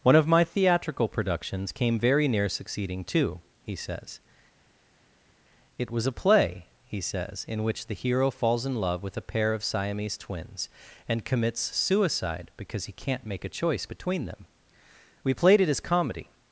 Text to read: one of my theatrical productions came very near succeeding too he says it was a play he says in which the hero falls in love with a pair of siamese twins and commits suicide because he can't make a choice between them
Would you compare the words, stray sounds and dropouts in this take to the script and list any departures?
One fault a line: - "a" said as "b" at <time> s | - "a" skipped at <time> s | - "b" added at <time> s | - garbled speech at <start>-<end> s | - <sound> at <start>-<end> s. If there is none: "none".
- "we played it as comedy" added at 15.2 s